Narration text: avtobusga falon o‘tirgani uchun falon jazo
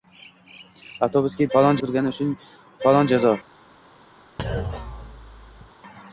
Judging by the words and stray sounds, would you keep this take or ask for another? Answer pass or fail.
fail